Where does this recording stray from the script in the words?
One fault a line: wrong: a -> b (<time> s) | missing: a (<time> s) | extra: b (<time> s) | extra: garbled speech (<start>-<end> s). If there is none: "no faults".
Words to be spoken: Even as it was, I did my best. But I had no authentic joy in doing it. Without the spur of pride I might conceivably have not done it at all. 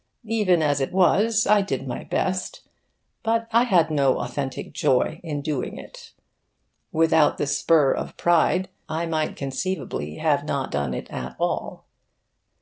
no faults